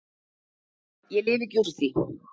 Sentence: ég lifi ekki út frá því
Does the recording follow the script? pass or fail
fail